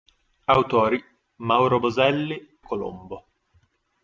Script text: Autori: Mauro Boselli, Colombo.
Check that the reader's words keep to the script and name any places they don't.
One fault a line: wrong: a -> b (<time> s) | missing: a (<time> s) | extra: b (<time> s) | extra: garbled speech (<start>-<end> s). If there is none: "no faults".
no faults